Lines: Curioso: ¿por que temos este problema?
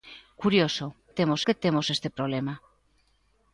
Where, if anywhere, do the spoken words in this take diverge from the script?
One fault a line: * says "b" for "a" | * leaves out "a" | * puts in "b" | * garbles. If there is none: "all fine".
* says "temos" for "por"